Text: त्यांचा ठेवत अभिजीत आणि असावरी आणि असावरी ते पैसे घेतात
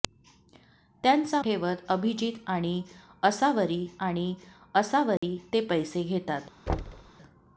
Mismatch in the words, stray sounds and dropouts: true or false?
true